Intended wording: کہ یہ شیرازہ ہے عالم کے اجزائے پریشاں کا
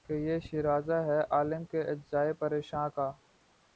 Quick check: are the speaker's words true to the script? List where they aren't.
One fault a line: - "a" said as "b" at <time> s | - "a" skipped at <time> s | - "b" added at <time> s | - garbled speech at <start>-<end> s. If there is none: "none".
none